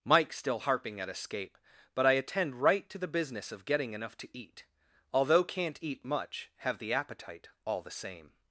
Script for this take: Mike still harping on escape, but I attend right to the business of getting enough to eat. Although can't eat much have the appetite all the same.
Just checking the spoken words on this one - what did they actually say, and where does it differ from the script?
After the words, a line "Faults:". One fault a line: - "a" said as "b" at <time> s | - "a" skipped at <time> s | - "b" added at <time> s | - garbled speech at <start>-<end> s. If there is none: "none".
Mike still harping at escape, but I attend right to the business of getting enough to eat. Although can't eat much have the appetite all the same.
Faults:
- "on" said as "at" at 1.0 s